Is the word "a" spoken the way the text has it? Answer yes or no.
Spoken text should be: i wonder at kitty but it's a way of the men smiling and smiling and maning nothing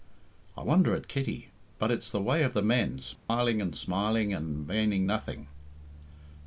no